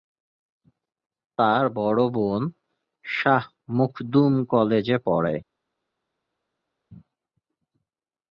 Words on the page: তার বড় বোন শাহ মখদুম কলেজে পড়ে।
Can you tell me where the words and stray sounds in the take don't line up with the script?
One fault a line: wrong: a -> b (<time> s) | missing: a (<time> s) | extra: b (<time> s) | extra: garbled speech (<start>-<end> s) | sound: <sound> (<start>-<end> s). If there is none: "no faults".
no faults